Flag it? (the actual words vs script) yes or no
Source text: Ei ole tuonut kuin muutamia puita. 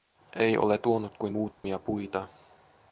no